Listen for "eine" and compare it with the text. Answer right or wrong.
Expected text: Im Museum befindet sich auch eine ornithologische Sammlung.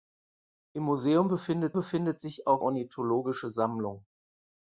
wrong